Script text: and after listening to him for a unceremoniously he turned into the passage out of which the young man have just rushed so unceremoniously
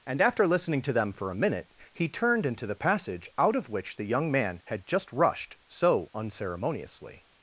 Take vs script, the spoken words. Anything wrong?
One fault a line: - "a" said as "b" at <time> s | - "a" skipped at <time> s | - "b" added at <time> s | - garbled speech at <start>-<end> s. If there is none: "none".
- "him" said as "them" at 0.9 s
- "unceremoniously" said as "minute" at 1.4 s
- "have" said as "had" at 4.7 s